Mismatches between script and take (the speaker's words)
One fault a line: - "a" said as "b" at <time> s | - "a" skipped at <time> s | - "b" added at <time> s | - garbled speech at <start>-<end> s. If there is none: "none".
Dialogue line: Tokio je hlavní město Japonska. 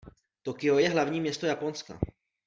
none